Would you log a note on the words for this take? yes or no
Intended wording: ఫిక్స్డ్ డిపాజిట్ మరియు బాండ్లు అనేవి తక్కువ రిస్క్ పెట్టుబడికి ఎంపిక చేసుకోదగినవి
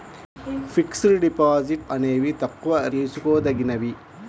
yes